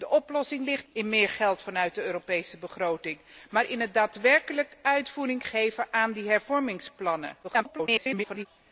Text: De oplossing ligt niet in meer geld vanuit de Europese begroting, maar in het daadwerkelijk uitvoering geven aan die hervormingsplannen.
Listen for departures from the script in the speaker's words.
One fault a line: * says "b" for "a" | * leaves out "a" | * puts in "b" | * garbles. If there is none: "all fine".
* leaves out "niet"
* garbles